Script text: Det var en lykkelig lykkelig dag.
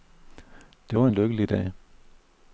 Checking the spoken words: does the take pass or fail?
fail